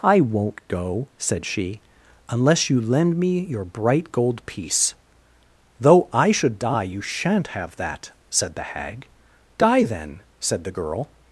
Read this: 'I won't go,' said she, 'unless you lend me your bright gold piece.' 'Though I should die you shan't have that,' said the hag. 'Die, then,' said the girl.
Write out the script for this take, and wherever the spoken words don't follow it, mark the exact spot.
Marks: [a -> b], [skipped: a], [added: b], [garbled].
'I won't go,' said she, 'unless you lend me your bright gold piece.' 'Though I should die you shan't have that,' said the hag. 'Die, then,' said the girl.